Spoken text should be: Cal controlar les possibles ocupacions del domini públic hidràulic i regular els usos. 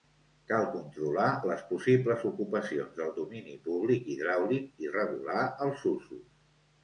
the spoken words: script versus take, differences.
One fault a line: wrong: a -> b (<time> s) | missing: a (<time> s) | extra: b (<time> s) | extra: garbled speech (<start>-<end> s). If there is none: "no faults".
no faults